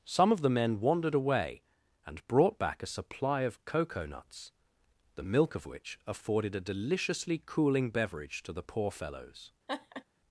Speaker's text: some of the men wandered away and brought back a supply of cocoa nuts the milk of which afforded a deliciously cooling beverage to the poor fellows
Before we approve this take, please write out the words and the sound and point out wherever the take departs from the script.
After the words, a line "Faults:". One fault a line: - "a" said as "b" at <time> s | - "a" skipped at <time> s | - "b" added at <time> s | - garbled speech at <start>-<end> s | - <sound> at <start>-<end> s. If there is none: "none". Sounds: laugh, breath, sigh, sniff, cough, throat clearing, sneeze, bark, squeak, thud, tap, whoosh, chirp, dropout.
some of the men wandered away and brought back a supply of cocoa nuts the milk of which afforded a deliciously cooling beverage to the poor fellows
Faults:
- laugh at 9.7-10.0 s